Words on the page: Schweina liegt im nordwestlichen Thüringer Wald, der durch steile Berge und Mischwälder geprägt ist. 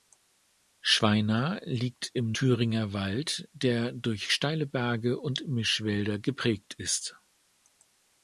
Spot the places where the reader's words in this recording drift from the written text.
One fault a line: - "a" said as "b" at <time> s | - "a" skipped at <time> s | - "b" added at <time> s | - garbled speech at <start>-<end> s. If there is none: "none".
- "nordwestlichen" skipped at 2.3 s